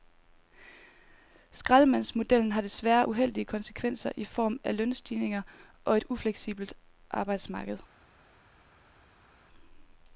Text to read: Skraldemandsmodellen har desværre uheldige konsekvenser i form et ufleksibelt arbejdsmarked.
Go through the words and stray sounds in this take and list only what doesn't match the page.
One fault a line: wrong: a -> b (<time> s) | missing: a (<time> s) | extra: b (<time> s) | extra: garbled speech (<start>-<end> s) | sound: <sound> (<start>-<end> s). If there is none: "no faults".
extra: af lønstigninger og (4.6 s)